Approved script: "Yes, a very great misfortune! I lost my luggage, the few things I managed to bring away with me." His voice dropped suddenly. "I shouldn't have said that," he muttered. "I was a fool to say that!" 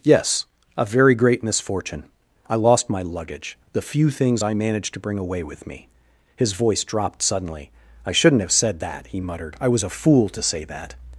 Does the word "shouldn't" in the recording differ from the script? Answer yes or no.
no